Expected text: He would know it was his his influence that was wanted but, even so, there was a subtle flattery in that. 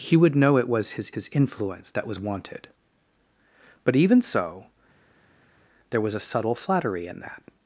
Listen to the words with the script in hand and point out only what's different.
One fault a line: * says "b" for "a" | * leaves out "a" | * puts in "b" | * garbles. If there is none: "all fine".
all fine